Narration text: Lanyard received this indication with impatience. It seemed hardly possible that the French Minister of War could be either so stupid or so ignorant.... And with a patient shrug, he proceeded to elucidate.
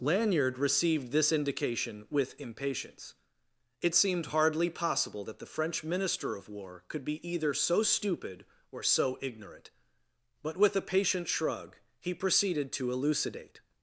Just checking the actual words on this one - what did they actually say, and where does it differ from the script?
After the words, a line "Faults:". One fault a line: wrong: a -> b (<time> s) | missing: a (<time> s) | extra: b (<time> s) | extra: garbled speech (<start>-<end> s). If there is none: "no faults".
Lanyard received this indication with impatience. It seemed hardly possible that the French Minister of War could be either so stupid or so ignorant.... But with a patient shrug, he proceeded to elucidate.
Faults:
wrong: And -> But (10.4 s)